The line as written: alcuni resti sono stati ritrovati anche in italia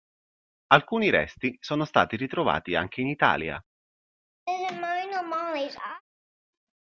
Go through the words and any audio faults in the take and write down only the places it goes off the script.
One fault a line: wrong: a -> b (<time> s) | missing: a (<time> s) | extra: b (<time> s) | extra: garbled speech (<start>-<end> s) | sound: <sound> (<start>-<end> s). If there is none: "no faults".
sound: laugh (4.5-6.0 s)